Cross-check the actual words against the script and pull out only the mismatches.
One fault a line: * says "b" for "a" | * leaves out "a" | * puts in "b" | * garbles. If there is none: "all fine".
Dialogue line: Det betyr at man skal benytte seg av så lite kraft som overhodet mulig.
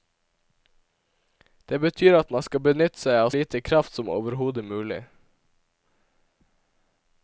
* leaves out "så"